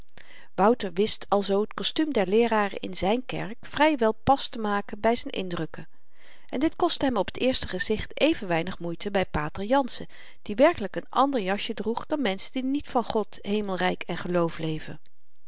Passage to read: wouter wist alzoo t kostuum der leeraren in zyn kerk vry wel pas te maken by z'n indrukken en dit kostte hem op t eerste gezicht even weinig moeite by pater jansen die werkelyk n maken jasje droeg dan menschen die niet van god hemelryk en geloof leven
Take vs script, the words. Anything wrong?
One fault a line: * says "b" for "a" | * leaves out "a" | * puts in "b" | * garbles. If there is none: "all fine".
* says "ander" for "maken"